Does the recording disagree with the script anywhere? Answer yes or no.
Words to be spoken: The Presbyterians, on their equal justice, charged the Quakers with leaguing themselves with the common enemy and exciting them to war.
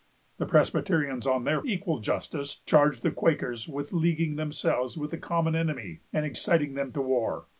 no